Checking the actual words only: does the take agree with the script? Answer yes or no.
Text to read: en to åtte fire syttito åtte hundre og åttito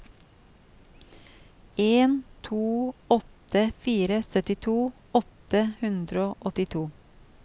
yes